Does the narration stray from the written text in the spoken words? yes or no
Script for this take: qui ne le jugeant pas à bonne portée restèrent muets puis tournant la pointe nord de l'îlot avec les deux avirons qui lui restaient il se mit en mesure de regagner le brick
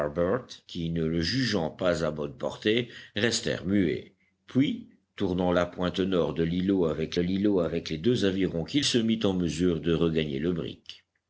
yes